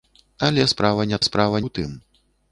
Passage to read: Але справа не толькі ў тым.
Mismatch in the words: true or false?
true